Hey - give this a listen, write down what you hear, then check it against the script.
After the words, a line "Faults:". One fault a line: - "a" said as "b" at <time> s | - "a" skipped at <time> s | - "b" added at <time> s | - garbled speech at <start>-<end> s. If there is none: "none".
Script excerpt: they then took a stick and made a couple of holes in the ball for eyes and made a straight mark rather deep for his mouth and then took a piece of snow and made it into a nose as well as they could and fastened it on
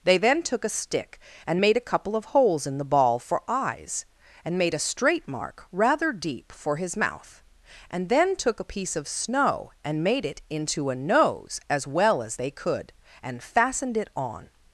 they then took a stick and made a couple of holes in the ball for eyes and made a straight mark rather deep for his mouth and then took a piece of snow and made it into a nose as well as they could and fastened it on
Faults:
none